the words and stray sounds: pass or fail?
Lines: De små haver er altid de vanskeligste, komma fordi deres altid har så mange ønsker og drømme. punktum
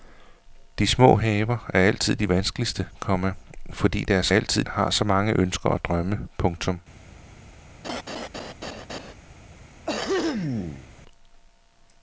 fail